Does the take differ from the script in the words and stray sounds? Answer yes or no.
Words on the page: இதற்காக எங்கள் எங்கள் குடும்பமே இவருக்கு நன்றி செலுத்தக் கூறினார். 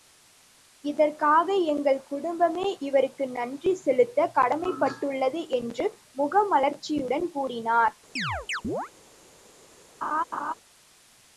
yes